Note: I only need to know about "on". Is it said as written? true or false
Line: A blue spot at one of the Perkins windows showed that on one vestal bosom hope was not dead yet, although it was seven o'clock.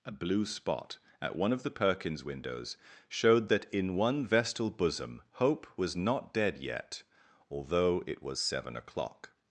false